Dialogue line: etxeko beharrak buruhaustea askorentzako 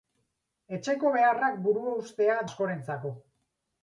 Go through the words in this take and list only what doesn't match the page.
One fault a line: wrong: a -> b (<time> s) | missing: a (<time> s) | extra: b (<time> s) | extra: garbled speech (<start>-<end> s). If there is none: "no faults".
no faults